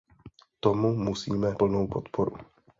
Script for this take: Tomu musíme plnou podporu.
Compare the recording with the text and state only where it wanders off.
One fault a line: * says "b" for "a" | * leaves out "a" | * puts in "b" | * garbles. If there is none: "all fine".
all fine